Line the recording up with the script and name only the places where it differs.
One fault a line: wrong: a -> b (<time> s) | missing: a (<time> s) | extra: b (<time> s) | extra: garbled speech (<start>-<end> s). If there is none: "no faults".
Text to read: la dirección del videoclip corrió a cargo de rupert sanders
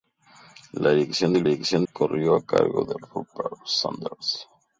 wrong: videoclip -> dirección (1.4 s)